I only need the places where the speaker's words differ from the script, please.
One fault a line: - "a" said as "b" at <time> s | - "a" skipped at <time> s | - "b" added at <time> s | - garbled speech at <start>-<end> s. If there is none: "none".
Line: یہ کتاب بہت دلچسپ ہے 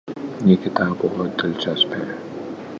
none